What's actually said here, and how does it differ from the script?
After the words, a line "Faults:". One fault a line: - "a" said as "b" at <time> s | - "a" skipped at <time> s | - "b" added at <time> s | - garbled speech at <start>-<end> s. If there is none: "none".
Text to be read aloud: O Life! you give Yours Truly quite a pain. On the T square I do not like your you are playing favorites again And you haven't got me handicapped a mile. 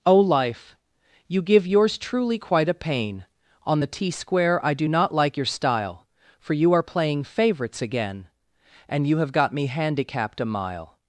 O Life! you give Yours Truly quite a pain. On the T square I do not like your style; For you are playing favorites again And you have got me handicapped a mile.
Faults:
- "style For" added at 5.4 s
- "haven't" said as "have" at 9.2 s